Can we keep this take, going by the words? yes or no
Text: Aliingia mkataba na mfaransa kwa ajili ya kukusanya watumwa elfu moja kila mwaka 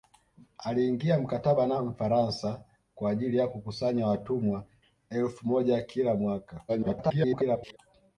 no